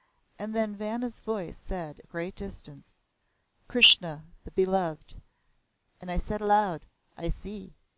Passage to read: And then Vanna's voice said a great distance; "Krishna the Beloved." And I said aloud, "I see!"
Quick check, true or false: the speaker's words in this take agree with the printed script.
true